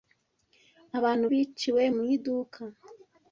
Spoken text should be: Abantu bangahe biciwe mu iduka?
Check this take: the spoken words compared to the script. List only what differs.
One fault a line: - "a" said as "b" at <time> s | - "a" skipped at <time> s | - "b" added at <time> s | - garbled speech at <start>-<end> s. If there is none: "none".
- "bangahe" skipped at 1.2 s